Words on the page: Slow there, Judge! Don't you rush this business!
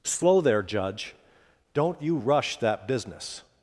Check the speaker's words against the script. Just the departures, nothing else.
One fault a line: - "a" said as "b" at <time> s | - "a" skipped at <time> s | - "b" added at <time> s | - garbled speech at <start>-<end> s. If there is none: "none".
- "this" said as "that" at 2.6 s